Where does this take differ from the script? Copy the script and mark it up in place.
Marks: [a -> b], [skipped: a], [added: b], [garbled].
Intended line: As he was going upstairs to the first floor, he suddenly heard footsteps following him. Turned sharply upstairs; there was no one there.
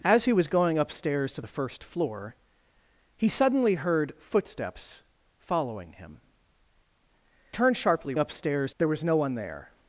As he was going upstairs to the first floor, he suddenly heard footsteps following him. Turned sharply upstairs; there was no one there.